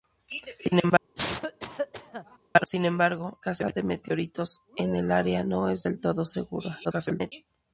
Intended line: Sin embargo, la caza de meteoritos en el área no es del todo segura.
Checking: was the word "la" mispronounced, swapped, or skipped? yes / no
yes